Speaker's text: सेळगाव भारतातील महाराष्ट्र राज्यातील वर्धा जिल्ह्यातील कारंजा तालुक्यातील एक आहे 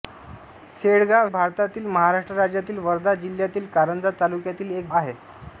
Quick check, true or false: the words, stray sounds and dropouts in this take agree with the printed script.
true